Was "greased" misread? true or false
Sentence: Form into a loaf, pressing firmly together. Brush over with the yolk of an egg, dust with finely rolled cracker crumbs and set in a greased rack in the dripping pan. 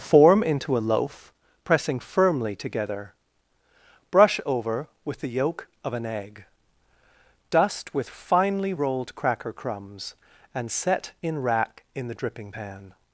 true